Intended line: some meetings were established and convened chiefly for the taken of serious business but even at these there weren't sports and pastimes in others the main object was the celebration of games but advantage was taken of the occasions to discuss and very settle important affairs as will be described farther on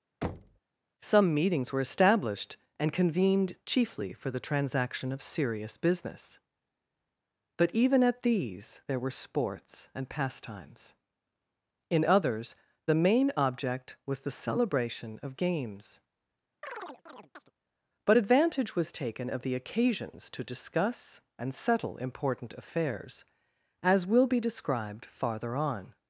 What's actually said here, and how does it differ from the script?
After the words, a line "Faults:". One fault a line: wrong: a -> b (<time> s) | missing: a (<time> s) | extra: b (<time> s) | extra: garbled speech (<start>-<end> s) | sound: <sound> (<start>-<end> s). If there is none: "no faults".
some meetings were established and convened chiefly for the transaction of serious business but even at these there were sports and pastimes in others the main object was the celebration of games but advantage was taken of the occasions to discuss and settle important affairs as will be described farther on
Faults:
sound: thud (0.2-0.6 s)
wrong: taken -> transaction (4.4 s)
wrong: weren't -> were (9.0 s)
sound: chirp (16.6-17.5 s)
missing: very (21.5 s)